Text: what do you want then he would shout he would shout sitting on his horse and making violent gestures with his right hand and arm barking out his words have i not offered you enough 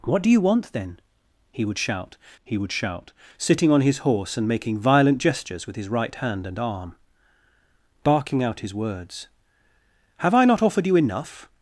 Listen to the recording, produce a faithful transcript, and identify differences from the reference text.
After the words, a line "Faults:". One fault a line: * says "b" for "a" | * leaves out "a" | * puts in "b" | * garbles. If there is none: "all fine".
what do you want then he would shout he would shout sitting on his horse and making violent gestures with his right hand and arm barking out his words have i not offered you enough
Faults:
all fine